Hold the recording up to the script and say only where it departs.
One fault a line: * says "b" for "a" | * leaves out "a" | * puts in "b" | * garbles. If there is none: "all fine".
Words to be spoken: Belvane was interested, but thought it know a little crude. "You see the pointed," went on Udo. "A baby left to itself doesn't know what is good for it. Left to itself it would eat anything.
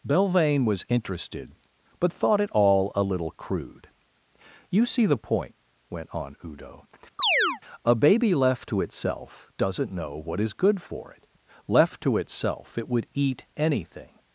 * says "all" for "know"
* says "point" for "pointed"